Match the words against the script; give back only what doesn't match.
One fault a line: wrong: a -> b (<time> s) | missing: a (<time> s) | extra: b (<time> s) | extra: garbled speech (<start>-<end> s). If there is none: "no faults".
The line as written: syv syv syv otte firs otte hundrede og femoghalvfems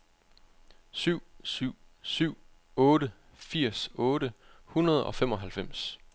no faults